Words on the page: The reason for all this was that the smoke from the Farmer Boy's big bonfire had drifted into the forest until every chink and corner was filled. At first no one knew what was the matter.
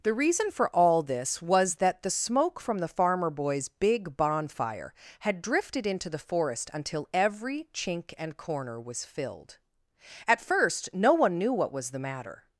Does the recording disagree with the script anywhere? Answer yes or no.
no